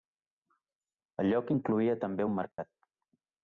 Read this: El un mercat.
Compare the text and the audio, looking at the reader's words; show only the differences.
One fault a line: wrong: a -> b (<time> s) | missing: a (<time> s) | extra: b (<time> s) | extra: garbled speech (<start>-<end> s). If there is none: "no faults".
extra: lloc incloïa també (1.3 s)